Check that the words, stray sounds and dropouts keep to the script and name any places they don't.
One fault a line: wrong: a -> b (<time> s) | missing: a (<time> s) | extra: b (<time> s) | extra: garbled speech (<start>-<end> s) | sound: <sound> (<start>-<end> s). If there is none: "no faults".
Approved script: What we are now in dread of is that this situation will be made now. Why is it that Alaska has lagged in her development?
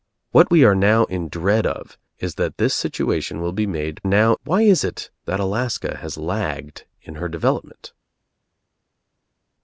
no faults